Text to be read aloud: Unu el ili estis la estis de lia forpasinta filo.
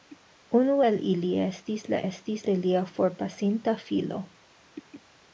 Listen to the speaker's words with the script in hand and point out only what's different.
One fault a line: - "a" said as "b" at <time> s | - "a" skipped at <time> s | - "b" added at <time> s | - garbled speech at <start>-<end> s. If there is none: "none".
none